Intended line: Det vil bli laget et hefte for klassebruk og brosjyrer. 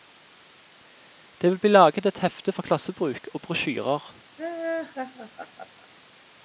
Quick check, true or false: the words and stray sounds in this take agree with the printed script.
false